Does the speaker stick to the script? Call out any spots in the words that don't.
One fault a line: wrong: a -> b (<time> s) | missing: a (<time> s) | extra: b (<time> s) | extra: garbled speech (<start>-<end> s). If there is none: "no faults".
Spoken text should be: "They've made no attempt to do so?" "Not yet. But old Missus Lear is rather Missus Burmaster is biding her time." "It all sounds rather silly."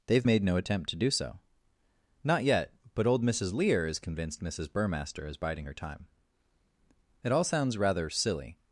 wrong: rather -> convinced (4.0 s)